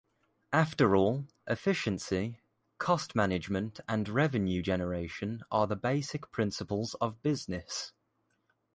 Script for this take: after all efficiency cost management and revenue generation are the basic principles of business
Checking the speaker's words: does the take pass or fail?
pass